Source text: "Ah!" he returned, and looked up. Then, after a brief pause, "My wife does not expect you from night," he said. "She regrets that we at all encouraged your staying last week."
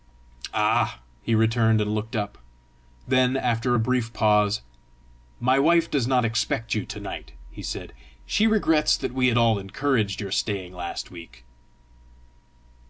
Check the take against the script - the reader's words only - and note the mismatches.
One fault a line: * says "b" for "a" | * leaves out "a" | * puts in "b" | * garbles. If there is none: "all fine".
* says "to" for "from"